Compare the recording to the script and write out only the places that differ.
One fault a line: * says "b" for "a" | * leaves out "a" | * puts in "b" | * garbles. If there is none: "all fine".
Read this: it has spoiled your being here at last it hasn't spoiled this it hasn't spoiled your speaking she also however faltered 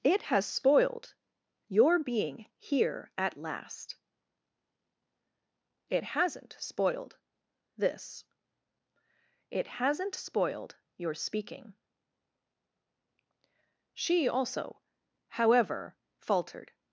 all fine